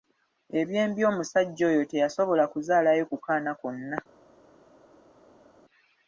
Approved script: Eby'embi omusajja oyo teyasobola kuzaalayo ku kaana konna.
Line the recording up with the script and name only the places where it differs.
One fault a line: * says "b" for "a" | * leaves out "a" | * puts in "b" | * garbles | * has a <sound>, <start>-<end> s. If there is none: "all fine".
all fine